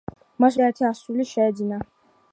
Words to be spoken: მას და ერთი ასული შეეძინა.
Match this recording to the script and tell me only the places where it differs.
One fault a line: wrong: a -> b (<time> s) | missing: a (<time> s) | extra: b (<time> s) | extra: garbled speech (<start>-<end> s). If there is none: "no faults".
no faults